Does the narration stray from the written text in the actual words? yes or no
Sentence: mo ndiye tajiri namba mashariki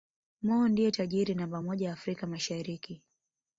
yes